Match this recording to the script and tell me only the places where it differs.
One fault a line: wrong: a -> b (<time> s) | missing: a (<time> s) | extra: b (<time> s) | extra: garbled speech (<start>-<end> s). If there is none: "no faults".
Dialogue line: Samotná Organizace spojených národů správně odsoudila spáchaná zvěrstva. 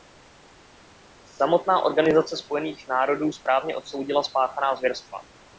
no faults